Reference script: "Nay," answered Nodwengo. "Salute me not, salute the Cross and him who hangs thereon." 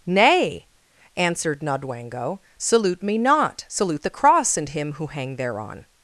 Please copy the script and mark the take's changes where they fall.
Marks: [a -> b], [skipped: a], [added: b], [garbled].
"Nay," answered Nodwengo. "Salute me not, salute the Cross and him who [hangs -> hang] thereon."